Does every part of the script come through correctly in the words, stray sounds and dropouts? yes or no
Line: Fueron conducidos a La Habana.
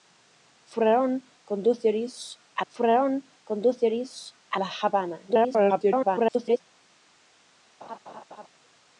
no